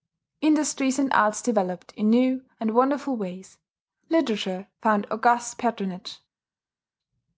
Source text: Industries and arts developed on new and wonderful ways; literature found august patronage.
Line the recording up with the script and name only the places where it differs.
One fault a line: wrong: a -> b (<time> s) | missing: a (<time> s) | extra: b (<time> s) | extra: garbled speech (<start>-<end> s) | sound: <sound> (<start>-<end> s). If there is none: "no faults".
wrong: on -> in (1.9 s)